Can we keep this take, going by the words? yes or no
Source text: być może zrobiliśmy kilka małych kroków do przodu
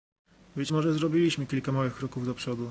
yes